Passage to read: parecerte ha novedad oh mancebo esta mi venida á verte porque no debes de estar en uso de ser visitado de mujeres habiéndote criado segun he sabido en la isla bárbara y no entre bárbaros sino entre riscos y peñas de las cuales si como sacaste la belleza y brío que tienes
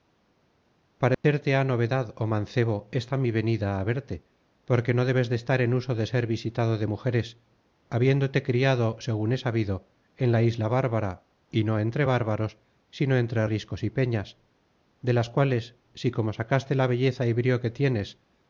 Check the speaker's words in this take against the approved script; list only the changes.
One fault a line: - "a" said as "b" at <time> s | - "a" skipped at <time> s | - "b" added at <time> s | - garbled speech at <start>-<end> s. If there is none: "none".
none